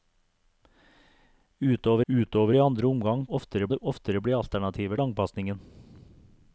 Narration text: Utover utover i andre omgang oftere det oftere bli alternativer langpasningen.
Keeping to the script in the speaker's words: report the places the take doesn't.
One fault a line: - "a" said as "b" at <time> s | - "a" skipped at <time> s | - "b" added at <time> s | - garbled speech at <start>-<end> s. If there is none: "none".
none